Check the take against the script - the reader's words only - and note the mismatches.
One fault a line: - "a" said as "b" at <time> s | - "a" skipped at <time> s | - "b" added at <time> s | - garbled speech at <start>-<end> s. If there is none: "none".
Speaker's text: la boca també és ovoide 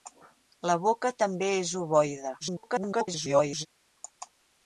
- garbled speech at 2.4-3.7 s